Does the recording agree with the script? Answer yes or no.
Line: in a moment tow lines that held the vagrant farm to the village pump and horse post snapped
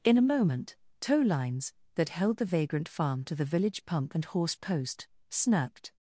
yes